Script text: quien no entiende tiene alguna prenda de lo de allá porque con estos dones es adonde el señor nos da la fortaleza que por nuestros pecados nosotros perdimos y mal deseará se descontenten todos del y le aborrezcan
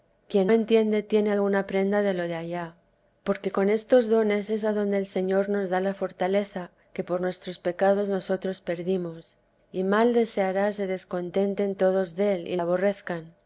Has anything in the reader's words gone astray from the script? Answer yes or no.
yes